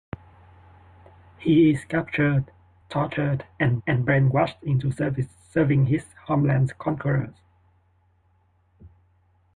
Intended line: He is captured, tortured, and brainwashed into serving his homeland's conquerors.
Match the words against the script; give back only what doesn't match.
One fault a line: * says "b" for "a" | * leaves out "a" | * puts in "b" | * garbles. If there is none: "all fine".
* puts in "and"